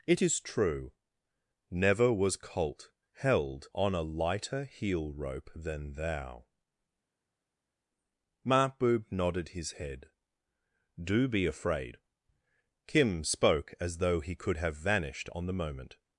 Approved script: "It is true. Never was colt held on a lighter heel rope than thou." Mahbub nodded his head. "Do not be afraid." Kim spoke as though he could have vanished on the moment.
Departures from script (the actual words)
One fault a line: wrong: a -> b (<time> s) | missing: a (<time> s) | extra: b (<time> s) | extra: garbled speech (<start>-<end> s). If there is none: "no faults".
missing: not (11.3 s)